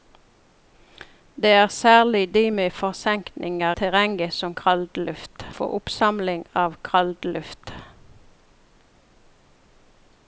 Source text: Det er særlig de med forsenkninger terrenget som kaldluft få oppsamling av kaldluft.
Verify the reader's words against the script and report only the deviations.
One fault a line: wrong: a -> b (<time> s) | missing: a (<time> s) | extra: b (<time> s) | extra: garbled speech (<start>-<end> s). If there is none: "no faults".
no faults